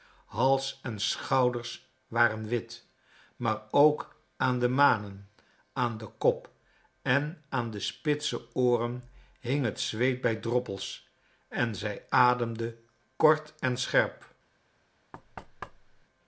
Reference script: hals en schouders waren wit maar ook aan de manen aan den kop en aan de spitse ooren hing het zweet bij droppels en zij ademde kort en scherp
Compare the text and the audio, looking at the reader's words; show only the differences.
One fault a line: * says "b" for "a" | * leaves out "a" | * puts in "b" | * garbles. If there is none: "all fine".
all fine